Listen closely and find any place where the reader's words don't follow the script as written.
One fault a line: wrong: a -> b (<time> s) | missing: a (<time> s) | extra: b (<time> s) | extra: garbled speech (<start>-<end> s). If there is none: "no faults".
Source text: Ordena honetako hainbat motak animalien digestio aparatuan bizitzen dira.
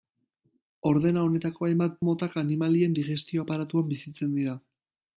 no faults